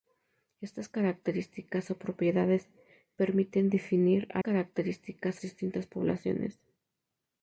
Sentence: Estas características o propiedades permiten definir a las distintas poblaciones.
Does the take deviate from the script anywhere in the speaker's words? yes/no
yes